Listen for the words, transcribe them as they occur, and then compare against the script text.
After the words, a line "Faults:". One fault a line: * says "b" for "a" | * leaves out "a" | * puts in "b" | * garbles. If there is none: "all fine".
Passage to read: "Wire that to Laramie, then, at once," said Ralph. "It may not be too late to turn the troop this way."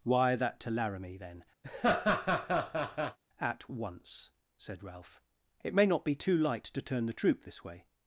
"Wire that to Laramie, then, at once," said Ralph. "It may not be too light to turn the troop this way."
Faults:
* says "light" for "late"